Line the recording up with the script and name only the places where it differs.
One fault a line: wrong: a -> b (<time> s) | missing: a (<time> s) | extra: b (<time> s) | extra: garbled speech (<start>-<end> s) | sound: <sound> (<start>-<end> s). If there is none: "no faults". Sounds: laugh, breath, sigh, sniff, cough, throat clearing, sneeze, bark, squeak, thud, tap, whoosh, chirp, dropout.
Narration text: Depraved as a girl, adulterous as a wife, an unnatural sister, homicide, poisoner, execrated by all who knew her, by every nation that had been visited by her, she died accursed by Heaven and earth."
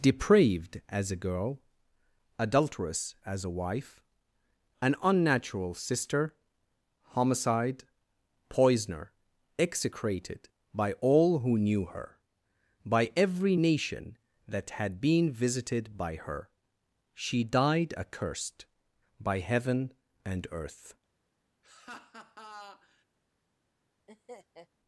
sound: laugh (21.6-23.0 s)
sound: laugh (24.1-24.7 s)